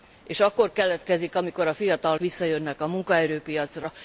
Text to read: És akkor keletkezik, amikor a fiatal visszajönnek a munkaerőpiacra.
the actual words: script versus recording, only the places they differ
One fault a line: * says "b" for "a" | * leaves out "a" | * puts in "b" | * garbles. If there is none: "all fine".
all fine